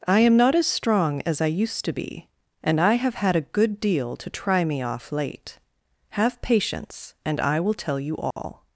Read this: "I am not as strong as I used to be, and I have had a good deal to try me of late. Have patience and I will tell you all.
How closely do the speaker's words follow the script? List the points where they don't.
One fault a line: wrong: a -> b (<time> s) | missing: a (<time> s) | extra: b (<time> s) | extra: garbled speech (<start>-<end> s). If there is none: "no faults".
wrong: of -> off (4.8 s)